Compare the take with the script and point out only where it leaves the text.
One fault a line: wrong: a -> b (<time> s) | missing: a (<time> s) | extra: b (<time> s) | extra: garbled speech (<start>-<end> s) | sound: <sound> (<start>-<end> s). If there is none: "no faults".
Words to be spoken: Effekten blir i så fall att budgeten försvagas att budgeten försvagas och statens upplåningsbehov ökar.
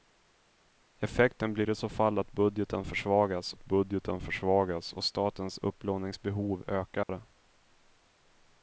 sound: dropout (7.0-7.1 s)